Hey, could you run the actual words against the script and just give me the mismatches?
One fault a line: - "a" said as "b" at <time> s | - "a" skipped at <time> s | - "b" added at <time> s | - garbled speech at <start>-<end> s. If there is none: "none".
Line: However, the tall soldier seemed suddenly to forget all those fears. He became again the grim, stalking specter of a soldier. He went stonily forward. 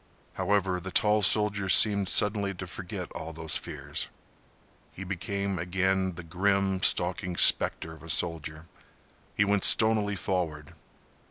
none